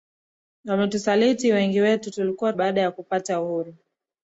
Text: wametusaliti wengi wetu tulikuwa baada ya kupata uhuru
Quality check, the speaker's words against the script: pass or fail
pass